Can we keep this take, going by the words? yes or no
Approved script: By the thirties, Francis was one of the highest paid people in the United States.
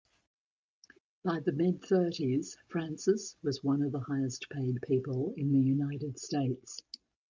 no